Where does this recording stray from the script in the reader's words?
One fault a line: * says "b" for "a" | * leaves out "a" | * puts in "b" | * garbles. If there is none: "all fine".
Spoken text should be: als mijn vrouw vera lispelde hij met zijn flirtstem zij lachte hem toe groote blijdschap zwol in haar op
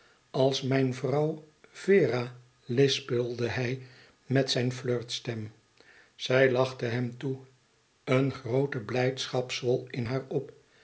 * puts in "een"